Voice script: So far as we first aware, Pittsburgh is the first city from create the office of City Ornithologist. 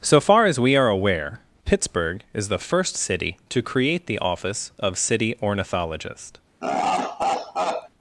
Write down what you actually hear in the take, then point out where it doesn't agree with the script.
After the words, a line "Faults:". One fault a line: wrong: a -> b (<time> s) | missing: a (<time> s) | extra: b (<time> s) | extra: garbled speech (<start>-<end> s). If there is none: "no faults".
So far as we are aware, Pittsburgh is the first city to create the office of City Ornithologist.
Faults:
wrong: first -> are (0.8 s)
wrong: from -> to (3.5 s)